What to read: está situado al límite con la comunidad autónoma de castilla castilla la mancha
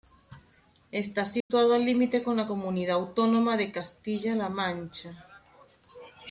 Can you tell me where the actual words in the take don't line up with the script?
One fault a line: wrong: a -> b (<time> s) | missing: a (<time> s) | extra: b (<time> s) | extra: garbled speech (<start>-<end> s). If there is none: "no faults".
missing: castilla (4.3 s)